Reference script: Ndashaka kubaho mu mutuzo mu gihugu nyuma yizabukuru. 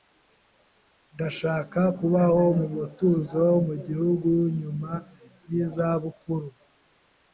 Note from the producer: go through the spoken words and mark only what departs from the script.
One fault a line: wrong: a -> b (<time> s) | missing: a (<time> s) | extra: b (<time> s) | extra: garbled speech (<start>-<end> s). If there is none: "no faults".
no faults